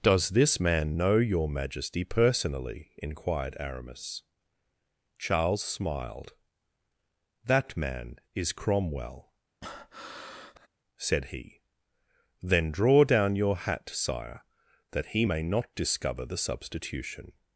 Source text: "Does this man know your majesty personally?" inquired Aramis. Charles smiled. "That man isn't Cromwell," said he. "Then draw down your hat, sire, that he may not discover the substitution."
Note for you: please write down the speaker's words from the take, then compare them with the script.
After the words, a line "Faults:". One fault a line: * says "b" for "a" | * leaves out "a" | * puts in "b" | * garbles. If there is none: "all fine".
"Does this man know your majesty personally?" inquired Aramis. Charles smiled. "That man is Cromwell," said he. "Then draw down your hat, sire, that he may not discover the substitution."
Faults:
* says "is" for "isn't"